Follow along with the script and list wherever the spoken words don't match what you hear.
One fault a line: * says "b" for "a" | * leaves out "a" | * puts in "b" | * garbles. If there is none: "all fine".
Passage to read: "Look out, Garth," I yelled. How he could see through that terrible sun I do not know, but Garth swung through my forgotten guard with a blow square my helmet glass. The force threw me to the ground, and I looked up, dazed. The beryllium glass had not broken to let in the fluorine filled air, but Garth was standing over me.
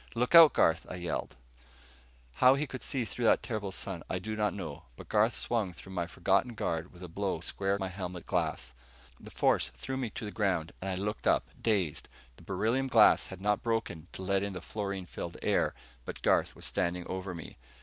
all fine